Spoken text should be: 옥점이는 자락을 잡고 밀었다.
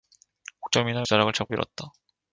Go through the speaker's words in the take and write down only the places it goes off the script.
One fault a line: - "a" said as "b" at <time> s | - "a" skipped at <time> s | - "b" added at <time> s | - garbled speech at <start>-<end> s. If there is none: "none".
none